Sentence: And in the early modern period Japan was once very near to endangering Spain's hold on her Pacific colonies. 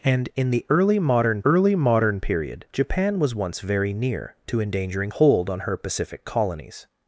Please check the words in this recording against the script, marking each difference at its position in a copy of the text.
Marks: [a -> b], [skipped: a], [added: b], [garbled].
And in the early modern [added: early modern] period Japan was once very near to endangering [skipped: Spain's] hold on her Pacific colonies.